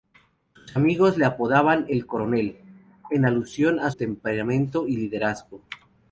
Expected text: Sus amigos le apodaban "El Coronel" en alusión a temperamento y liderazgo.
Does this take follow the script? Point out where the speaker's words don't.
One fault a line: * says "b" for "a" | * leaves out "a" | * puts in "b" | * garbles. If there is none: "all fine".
all fine